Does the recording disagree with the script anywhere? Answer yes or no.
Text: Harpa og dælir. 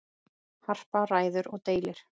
yes